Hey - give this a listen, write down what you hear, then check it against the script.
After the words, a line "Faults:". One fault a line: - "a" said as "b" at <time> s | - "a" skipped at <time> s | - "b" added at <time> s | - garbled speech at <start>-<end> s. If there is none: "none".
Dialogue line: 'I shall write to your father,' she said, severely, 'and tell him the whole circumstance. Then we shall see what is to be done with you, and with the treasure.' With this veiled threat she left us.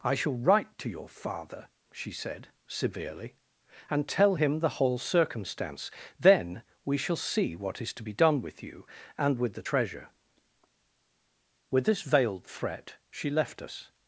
'I shall write to your father,' she said, severely, 'and tell him the whole circumstance. Then we shall see what is to be done with you, and with the treasure.' With this veiled threat she left us.
Faults:
none